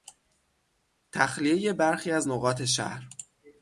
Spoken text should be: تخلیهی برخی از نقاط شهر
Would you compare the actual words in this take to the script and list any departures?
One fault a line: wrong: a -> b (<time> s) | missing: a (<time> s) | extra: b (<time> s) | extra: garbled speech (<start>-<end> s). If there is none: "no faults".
no faults